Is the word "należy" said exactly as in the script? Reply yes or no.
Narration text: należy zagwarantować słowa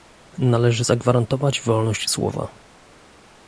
yes